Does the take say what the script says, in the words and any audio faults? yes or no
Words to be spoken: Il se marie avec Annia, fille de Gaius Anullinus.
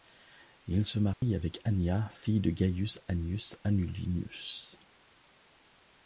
no